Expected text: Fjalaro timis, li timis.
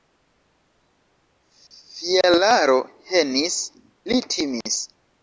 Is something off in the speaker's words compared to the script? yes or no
yes